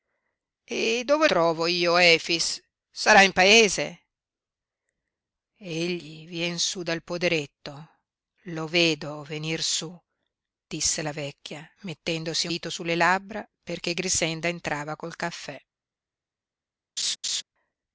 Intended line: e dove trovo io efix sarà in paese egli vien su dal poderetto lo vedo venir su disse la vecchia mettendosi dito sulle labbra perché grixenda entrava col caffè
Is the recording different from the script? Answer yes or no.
no